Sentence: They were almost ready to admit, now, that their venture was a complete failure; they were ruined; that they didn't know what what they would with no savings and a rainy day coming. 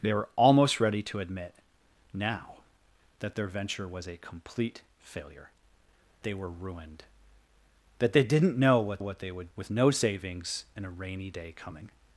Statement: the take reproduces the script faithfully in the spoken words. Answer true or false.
true